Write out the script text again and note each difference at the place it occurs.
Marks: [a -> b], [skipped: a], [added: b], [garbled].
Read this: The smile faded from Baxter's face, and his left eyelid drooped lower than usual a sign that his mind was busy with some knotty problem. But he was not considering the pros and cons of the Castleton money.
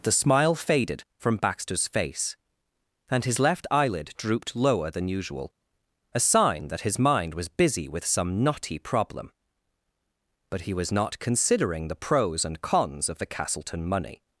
The smile faded from Baxter's face, and his left eyelid drooped lower than usual a sign that his mind was busy with some knotty problem. But he was not considering the pros and cons of the Castleton money.